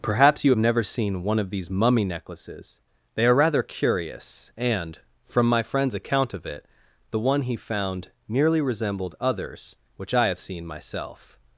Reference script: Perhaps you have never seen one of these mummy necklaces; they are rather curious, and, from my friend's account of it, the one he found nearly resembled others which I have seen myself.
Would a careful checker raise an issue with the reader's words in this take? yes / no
no